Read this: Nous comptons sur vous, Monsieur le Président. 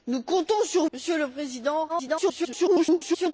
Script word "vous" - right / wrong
wrong